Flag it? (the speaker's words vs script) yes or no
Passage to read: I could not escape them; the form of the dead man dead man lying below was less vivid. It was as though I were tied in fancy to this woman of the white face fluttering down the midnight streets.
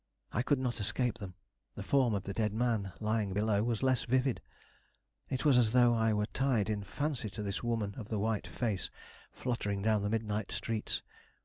yes